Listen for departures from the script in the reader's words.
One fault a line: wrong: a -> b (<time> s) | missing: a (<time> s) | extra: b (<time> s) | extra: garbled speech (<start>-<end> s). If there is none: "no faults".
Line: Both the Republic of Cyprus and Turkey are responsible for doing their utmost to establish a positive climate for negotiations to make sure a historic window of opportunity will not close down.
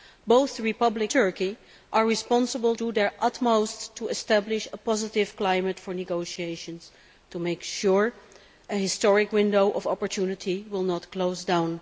missing: of Cyprus and (1.1 s)
missing: for (2.7 s)